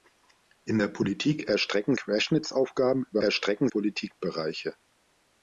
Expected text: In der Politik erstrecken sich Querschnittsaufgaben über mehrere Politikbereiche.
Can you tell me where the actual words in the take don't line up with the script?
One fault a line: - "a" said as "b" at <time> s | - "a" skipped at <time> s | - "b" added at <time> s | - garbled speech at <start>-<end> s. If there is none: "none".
- "sich" skipped at 1.9 s
- "mehrere" said as "erstrecken" at 3.2 s